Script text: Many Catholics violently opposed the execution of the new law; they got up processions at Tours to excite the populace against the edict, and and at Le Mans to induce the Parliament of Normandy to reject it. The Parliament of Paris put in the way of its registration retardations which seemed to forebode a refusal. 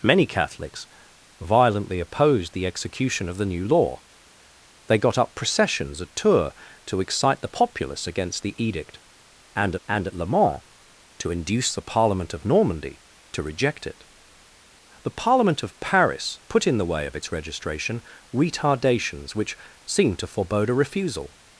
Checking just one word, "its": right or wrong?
right